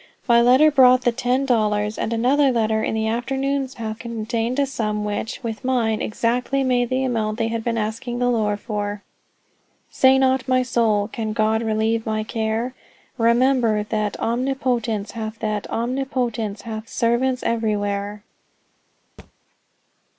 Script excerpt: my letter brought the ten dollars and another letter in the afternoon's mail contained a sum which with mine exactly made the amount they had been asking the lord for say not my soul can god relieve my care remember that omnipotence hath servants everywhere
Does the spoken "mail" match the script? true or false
false